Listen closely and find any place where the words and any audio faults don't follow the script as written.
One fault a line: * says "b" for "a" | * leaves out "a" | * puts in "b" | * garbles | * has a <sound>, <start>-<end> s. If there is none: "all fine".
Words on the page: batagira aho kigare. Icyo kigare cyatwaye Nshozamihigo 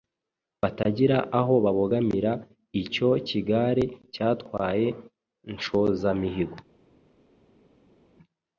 * says "babogamira" for "kigare"